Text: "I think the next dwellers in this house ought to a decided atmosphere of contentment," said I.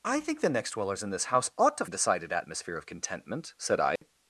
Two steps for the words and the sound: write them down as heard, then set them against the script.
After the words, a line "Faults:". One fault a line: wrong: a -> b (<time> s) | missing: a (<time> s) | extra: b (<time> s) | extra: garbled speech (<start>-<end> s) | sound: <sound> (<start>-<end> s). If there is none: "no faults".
"I think the next dwellers in this house ought to a decided atmosphere of contentment," said I.
Faults:
sound: dropout (4.0-4.0 s)